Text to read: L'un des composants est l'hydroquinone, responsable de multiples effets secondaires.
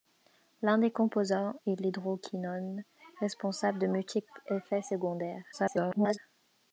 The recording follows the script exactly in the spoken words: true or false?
false